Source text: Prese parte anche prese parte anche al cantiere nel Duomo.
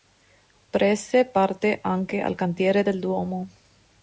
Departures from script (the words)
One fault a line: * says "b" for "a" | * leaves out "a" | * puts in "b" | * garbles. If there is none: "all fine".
* leaves out "prese parte anche"
* says "del" for "nel"